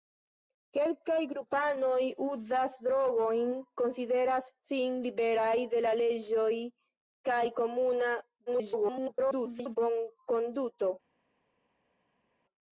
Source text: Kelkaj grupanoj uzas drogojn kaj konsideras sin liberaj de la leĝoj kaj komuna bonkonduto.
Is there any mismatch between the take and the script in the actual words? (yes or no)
yes